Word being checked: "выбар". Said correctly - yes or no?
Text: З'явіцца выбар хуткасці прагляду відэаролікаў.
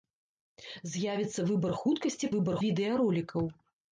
yes